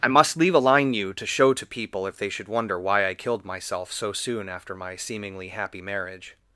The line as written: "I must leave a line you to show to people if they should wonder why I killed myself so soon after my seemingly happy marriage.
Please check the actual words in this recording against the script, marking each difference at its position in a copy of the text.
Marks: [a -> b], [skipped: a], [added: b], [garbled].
"I must leave a line you to show to people if they should wonder why I killed myself so soon after my seemingly happy marriage.